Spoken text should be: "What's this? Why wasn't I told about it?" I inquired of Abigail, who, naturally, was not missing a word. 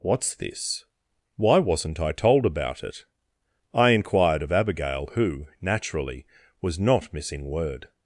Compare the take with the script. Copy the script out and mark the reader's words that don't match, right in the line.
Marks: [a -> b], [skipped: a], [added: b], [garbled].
"What's this? Why wasn't I told about it?" I inquired of Abigail, who, naturally, was not missing [skipped: a] word.